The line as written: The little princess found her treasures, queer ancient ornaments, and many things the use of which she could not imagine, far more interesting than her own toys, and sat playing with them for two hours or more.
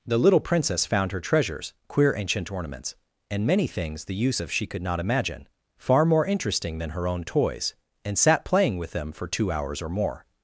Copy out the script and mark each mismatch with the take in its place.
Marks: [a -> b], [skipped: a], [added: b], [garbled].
The little princess found her treasures, queer ancient ornaments, and many things the use of [skipped: which] she could not imagine, far more interesting than her own toys, and sat playing with them for two hours or more.